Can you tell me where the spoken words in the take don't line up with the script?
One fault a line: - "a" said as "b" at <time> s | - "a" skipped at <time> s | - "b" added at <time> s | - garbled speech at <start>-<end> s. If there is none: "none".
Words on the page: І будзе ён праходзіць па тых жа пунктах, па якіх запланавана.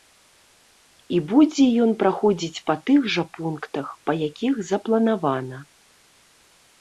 none